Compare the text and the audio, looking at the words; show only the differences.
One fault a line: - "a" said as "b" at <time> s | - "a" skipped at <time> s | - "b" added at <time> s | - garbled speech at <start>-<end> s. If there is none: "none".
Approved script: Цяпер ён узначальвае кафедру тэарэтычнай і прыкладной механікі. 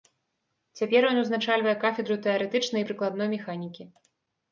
none